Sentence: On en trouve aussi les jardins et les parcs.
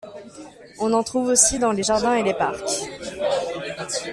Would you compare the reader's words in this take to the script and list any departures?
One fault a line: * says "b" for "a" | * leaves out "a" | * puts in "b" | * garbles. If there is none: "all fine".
* puts in "dans"